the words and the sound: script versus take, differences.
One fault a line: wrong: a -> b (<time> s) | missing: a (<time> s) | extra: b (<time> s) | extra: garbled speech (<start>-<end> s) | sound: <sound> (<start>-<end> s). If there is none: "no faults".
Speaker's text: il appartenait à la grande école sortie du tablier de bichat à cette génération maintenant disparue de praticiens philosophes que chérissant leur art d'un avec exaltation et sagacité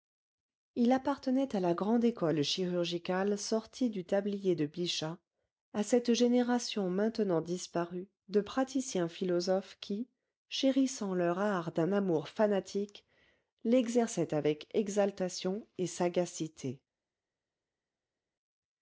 extra: chirurgicale (2.4 s)
wrong: que -> qui (9.8 s)
extra: amour fanatique l'exerçaient (11.9 s)